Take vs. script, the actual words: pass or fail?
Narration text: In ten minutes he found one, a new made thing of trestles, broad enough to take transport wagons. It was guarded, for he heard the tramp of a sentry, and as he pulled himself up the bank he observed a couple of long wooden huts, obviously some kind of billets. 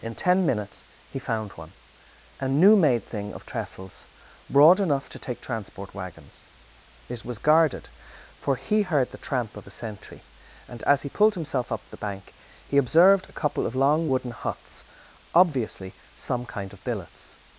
pass